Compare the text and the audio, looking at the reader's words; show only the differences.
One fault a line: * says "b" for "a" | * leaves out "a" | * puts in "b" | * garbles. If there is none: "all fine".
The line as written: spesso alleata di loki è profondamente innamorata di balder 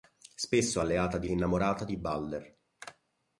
* leaves out "loki è profondamente"